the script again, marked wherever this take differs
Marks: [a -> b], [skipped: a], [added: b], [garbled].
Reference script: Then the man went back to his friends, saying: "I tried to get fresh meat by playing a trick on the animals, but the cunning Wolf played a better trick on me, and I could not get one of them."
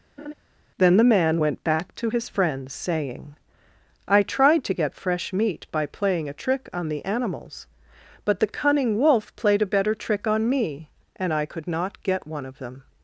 Then the man went back to his friends, saying: "I tried to get fresh meat by playing a trick on the animals, but the cunning Wolf played a better trick on me, and I could not get one of them."